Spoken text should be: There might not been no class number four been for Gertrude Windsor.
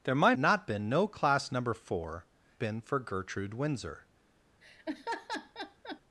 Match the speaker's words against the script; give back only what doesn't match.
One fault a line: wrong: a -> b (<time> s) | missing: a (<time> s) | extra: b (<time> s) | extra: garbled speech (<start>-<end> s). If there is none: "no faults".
no faults